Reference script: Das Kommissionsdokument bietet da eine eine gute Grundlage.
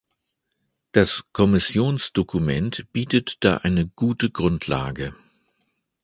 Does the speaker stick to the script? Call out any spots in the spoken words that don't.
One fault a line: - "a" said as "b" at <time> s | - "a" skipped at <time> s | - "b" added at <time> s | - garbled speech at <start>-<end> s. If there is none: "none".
- "eine" skipped at 3.9 s